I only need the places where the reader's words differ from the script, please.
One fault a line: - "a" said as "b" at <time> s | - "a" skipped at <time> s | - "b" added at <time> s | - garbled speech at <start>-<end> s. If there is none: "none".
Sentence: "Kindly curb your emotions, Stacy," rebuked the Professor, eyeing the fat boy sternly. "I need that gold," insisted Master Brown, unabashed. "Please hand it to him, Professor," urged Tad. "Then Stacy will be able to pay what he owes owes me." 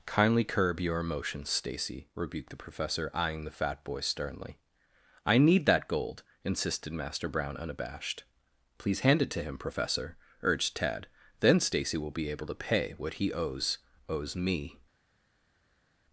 none